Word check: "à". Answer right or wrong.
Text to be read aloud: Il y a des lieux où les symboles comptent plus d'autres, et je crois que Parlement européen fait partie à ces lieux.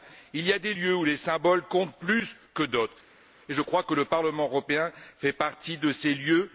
wrong